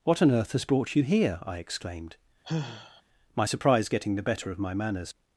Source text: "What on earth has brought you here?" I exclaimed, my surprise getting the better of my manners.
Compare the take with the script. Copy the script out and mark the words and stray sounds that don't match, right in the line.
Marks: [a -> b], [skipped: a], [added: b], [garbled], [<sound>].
"What on earth has brought you here?" I exclaimed, [sigh] my surprise getting the better of my manners.